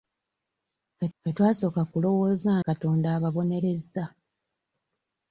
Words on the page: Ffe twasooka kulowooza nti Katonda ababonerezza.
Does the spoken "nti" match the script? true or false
false